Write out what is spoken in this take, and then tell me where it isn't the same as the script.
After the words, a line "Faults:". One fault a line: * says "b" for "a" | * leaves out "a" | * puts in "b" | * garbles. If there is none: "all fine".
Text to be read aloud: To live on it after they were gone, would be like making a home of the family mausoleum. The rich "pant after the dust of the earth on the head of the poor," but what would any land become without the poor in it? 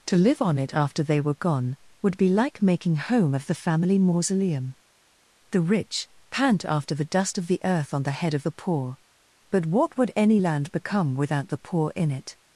To live on it after they were gone, would be like making home of the family mausoleum. The rich "pant after the dust of the earth on the head of the poor," but what would any land become without the poor in it?
Faults:
* leaves out "a"